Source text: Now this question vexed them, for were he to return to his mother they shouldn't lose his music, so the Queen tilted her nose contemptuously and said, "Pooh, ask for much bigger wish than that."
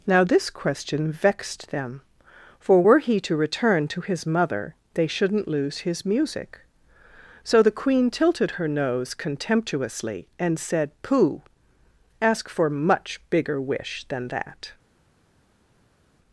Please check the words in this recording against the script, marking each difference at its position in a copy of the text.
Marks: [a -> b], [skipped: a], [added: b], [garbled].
Now this question vexed them, for were he to return to his mother they shouldn't lose his music, so the Queen tilted her nose contemptuously and said, "Pooh, ask for much bigger wish than that."